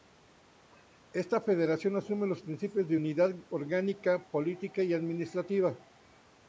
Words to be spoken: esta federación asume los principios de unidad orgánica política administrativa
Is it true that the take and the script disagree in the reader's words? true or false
true